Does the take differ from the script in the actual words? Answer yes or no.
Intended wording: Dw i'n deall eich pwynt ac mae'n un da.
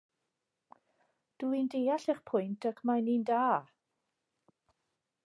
no